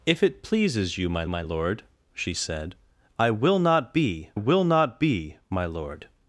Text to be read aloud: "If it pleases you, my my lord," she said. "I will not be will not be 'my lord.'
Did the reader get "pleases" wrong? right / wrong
right